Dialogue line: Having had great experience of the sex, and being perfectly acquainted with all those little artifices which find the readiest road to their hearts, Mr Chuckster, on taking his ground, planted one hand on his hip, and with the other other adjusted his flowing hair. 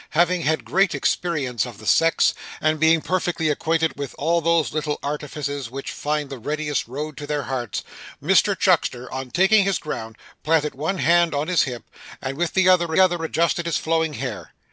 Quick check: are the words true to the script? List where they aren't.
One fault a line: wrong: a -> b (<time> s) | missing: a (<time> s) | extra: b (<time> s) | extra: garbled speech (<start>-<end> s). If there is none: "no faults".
no faults